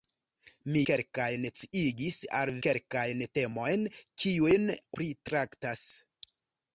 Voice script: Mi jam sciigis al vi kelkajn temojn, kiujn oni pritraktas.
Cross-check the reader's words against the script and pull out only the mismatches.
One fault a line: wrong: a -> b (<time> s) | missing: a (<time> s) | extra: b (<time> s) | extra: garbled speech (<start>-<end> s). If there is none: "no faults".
wrong: jam -> kelkajn (0.9 s)
missing: vi (2.5 s)
missing: oni (4.7 s)